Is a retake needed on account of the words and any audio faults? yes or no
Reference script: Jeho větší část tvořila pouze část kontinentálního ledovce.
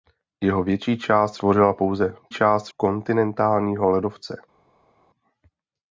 no